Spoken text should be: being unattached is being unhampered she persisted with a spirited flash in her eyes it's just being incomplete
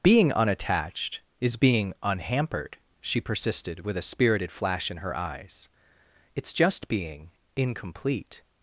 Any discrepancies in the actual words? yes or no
no